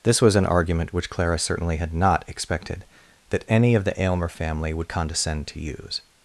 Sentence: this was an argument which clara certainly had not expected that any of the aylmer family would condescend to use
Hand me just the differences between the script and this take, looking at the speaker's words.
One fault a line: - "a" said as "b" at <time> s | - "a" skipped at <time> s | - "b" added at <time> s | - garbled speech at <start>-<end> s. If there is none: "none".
none